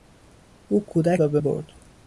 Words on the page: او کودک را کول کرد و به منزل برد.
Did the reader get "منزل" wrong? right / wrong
wrong